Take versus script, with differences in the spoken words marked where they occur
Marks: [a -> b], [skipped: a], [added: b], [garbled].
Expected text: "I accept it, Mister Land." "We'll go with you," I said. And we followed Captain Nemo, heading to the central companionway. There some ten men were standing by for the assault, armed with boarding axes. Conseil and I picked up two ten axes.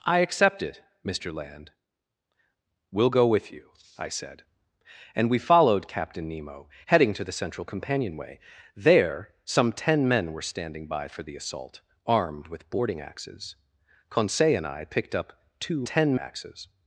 "I accept it, Mister Land." "We'll go with you," I said. And we followed Captain Nemo, heading to the central companionway. There some ten men were standing by for the assault, armed with boarding axes. Conseil and I picked up two ten axes.